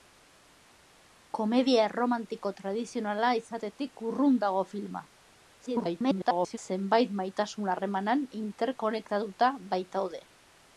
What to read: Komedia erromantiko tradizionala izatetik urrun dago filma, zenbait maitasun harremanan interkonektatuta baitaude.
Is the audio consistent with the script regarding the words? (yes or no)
no